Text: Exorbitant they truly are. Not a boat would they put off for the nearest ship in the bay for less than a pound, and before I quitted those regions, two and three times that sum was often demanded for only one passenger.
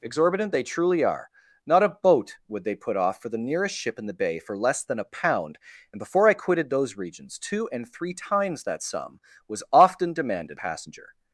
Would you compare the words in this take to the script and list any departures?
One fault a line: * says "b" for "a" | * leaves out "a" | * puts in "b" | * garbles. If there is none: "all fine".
* leaves out "for only one"